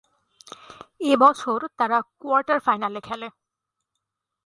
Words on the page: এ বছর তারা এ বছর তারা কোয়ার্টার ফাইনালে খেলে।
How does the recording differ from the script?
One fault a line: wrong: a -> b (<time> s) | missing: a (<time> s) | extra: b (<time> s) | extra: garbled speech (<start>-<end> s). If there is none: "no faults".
missing: এ বছর তারা (2.0 s)